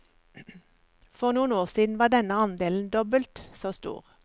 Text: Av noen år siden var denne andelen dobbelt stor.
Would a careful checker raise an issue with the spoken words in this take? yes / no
yes